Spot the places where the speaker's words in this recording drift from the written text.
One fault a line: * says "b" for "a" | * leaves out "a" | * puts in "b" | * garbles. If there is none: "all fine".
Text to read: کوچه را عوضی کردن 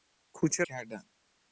* leaves out "را عوضی"